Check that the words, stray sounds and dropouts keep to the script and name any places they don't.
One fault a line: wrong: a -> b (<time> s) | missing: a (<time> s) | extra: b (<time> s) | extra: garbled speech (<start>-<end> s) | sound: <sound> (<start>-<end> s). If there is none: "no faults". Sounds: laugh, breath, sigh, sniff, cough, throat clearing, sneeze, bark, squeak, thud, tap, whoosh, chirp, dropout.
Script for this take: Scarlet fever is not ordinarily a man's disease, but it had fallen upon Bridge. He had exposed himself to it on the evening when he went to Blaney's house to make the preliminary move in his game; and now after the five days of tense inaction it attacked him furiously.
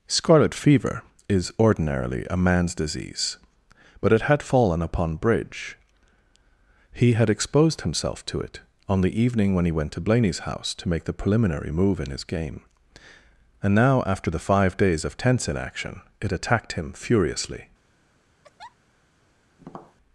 missing: not (1.5 s)
sound: laugh (18.4-18.8 s)
sound: tap (19.6-20.0 s)